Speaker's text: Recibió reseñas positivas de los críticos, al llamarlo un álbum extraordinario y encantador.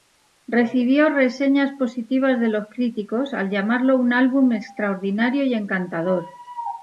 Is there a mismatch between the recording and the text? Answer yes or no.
no